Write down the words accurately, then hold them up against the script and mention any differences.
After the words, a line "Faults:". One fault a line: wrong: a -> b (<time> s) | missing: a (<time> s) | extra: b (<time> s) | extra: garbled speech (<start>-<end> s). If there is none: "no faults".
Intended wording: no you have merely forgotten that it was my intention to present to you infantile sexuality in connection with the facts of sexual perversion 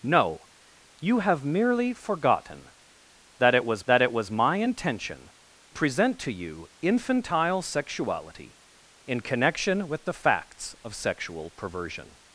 no you have merely forgotten that it was that it was my intention present to you infantile sexuality in connection with the facts of sexual perversion
Faults:
extra: that it was (3.8 s)
missing: to (5.3 s)